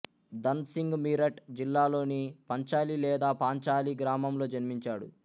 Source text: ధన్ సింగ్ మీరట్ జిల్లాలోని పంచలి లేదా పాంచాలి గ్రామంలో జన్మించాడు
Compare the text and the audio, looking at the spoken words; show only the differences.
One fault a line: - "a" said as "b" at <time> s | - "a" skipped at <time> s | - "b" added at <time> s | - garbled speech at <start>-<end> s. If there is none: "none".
none